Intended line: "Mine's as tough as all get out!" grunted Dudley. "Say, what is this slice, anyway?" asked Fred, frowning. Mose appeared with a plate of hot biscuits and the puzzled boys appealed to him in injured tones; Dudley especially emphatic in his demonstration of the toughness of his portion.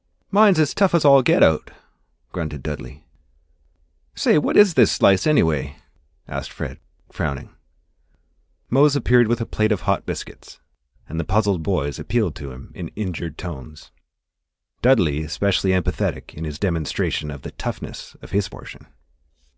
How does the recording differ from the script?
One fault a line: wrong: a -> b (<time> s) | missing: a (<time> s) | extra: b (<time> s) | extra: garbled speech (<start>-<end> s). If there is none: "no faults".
no faults